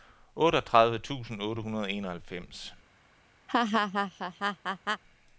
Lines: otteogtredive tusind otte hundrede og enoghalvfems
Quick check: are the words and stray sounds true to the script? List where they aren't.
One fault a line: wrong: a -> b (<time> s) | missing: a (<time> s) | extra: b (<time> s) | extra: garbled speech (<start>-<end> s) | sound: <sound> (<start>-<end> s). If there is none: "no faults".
sound: laugh (3.5-5.0 s)